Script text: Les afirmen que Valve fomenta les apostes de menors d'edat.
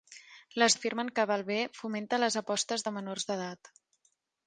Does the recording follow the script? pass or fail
pass